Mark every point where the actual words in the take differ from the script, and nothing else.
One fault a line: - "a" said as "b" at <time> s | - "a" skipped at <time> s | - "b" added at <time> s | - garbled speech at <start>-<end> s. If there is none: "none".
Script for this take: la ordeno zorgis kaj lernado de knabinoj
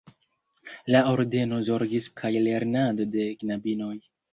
none